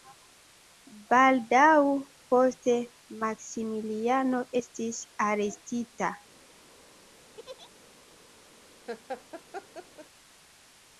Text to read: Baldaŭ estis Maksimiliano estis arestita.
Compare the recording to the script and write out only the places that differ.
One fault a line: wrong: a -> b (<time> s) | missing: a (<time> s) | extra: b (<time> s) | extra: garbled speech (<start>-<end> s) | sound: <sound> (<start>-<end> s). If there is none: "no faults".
wrong: estis -> poste (2.3 s)
sound: laugh (7.4-7.7 s)
sound: laugh (8.9-10.1 s)